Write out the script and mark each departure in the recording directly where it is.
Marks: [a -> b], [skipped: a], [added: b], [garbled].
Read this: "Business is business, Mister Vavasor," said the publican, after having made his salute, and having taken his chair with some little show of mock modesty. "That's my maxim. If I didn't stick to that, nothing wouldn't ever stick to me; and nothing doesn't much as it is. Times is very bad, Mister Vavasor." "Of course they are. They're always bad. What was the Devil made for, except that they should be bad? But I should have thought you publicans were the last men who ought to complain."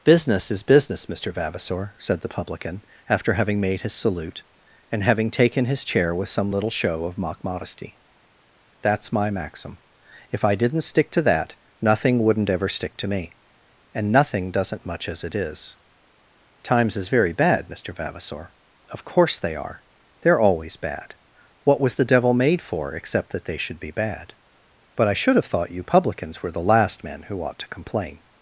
"Business is business, Mister Vavasor," said the publican, after having made his salute, and having taken his chair with some little show of mock modesty. "That's my maxim. If I didn't stick to that, nothing wouldn't ever stick to me; and nothing doesn't much as it is. Times is very bad, Mister Vavasor." "Of course they are. They're always bad. What was the Devil made for, except that they should be bad? But I should have thought you publicans were the last men who ought to complain."